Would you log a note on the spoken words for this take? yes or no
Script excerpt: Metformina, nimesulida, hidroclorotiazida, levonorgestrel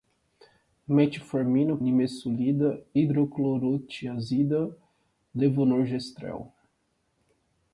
no